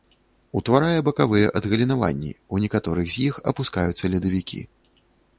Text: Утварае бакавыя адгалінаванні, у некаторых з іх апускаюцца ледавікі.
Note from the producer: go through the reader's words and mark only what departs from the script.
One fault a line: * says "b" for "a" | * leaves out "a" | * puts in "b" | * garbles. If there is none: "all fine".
all fine